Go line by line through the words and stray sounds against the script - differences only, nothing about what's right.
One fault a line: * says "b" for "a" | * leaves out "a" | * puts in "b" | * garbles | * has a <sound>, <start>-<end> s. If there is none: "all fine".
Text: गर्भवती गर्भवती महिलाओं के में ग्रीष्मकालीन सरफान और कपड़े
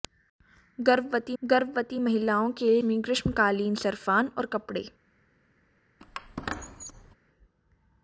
* has a squeak, 6.0-7.2 s